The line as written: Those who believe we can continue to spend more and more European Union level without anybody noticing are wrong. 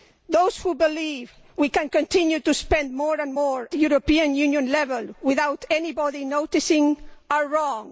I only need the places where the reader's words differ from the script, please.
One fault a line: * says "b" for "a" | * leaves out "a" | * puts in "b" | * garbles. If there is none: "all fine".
all fine